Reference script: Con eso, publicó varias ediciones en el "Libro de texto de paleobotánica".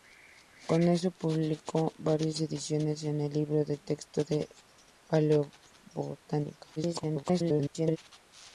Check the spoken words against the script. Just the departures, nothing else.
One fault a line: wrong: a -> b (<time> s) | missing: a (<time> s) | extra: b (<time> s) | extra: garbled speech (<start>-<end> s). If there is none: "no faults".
extra: garbled speech (6.8-8.0 s)